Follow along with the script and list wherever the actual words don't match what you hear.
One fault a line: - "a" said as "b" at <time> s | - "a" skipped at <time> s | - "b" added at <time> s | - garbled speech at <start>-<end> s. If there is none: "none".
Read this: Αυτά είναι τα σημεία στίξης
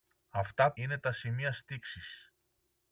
none